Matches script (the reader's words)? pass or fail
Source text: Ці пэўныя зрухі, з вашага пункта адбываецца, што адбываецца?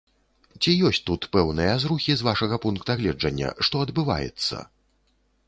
fail